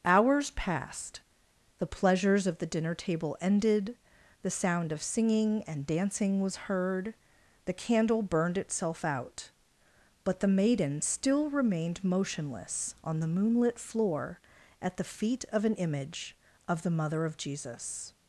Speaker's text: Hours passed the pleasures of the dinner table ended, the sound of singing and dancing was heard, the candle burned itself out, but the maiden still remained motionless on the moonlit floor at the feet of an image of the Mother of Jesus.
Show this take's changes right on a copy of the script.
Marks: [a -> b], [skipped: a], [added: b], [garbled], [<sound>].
Hours passed the pleasures of the dinner table ended, the sound of singing and dancing was heard, the candle burned itself out, but the maiden still remained motionless on the moonlit floor at the feet of an image of the Mother of Jesus.